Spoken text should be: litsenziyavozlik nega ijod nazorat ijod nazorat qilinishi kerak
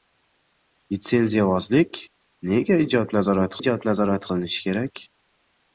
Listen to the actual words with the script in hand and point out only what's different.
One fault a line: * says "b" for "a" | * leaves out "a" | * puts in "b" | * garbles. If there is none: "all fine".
all fine